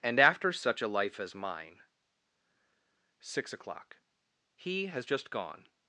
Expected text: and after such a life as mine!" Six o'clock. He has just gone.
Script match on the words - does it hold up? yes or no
yes